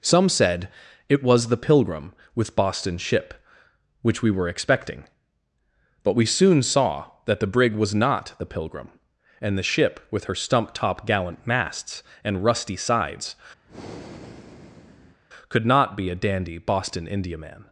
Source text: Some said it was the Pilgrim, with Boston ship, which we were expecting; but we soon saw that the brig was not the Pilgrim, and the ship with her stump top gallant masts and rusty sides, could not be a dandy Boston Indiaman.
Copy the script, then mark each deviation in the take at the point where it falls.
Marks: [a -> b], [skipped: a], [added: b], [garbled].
Some said it was the Pilgrim, with Boston ship, which we were expecting; but we soon saw that the brig was not the Pilgrim, and the ship with her stump top gallant masts and rusty sides, could not be a dandy Boston Indiaman.